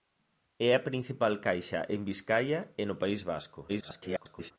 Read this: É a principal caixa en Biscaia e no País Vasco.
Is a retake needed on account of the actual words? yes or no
yes